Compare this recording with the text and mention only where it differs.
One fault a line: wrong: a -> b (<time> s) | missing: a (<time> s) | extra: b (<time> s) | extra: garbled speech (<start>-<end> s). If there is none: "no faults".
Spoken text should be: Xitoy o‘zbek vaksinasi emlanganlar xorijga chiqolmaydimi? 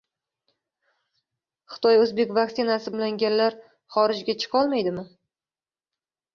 no faults